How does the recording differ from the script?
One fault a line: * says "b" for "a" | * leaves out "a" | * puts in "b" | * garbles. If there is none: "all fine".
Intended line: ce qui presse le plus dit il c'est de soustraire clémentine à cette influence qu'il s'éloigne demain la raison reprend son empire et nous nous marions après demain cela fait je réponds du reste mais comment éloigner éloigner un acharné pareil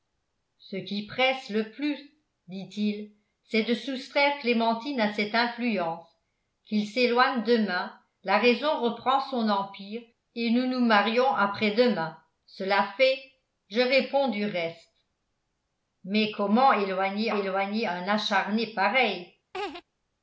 all fine